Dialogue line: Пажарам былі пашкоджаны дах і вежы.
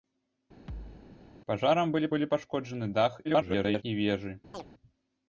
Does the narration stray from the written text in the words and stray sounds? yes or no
yes